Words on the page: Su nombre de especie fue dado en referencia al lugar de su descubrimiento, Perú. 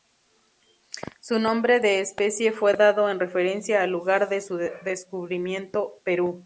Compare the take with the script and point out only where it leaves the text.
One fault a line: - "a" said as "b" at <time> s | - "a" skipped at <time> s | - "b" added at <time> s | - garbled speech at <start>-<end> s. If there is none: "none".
none